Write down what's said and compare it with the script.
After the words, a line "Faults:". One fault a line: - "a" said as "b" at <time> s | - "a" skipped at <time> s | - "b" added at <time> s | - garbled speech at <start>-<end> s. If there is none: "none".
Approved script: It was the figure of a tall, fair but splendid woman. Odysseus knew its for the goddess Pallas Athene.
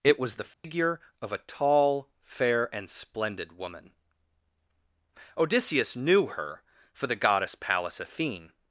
It was the figure of a tall, fair and splendid woman. Odysseus knew her for the goddess Pallas Athene.
Faults:
- "but" said as "and" at 2.7 s
- "its" said as "her" at 6.3 s